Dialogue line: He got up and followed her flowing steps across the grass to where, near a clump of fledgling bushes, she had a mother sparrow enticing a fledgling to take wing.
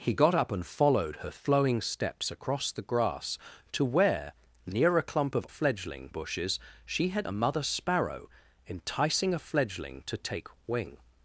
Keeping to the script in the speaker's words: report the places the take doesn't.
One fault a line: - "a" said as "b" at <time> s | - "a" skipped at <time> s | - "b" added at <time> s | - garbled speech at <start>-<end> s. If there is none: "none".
none